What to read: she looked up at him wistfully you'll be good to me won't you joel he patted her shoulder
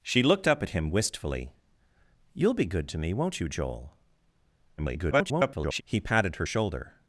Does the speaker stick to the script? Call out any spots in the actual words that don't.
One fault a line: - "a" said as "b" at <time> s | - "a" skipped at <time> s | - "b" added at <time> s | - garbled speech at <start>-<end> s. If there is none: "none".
- garbled speech at 4.8-5.8 s